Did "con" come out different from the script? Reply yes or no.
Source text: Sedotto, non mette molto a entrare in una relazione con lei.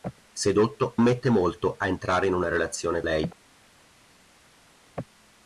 yes